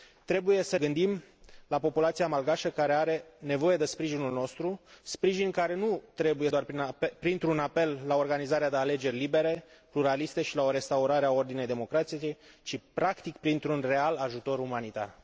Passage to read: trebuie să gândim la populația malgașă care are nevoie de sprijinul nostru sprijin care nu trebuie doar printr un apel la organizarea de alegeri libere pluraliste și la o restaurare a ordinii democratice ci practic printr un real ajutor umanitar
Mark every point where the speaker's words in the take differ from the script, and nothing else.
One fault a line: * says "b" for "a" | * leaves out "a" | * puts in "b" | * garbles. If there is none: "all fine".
all fine